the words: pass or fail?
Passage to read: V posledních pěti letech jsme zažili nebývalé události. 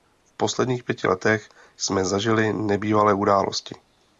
pass